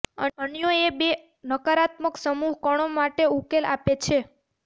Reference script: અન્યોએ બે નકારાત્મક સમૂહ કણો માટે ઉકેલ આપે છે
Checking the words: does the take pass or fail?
pass